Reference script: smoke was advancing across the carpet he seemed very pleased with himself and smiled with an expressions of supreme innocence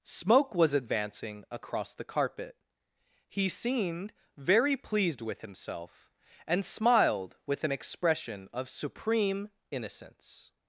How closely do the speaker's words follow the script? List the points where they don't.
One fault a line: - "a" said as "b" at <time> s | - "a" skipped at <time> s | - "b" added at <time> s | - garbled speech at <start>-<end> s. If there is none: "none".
- "expressions" said as "expression" at 7.7 s